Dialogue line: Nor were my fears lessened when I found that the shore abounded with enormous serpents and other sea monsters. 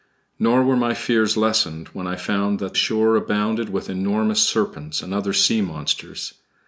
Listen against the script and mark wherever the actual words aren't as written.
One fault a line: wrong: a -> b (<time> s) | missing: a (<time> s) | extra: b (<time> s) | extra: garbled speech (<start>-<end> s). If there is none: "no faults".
missing: the (2.8 s)